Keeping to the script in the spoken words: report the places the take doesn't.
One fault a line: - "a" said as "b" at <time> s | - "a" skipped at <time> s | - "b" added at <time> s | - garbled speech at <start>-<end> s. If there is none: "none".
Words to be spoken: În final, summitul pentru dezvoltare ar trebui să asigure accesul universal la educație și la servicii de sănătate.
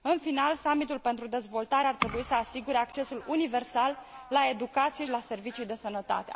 - "și" skipped at 5.0 s